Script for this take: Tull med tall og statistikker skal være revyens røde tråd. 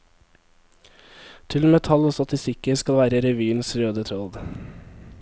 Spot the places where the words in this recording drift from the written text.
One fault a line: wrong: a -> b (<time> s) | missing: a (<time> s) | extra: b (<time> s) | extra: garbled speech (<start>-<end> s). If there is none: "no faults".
no faults